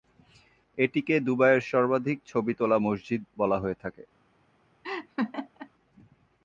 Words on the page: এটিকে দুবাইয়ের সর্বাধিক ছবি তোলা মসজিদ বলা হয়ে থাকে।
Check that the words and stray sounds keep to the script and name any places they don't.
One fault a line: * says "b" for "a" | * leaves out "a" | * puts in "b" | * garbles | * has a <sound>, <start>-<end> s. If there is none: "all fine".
* has a laugh, 4.8-5.7 s